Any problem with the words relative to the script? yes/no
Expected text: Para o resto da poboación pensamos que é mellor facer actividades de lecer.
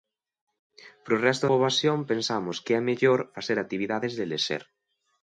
yes